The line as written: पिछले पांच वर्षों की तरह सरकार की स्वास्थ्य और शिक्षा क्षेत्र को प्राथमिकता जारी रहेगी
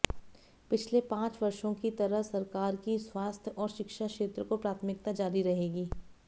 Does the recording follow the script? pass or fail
pass